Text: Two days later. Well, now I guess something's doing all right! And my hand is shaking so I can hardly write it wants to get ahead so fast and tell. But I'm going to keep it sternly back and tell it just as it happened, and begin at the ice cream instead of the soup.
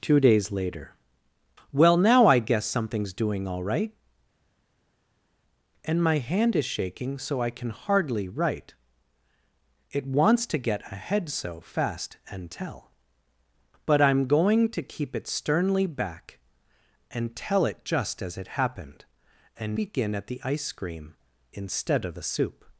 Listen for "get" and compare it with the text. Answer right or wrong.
right